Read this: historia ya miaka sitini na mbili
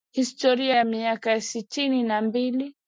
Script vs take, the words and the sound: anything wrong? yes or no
no